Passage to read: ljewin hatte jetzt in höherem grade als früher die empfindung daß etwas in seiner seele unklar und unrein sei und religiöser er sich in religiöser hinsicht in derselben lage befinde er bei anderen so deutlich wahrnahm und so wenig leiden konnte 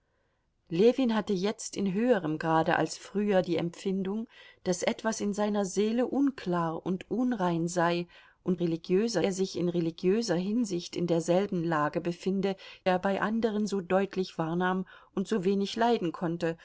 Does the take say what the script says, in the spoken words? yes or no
yes